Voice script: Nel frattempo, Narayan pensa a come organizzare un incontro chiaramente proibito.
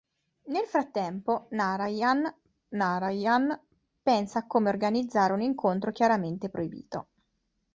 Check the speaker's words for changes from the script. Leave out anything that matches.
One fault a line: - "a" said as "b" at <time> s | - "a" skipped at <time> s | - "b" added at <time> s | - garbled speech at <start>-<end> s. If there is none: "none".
- "Narayan" added at 2.7 s